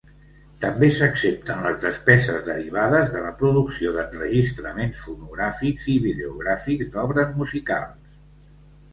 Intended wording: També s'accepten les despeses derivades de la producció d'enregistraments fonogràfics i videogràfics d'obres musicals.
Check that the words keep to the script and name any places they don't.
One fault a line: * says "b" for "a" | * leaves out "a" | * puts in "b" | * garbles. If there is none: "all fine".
all fine